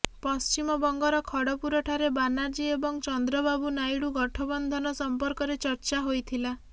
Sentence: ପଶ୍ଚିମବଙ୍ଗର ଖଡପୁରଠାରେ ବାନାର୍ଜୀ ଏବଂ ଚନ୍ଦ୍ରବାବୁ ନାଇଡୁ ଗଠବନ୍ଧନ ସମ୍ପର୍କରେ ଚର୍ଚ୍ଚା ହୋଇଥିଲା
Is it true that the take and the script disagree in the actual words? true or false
false